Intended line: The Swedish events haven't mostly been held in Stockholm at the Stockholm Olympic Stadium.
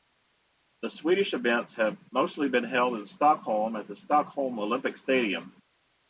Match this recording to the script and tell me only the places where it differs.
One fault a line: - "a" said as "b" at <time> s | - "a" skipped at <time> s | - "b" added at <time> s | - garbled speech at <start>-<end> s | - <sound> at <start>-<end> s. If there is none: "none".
- "haven't" said as "have" at 1.8 s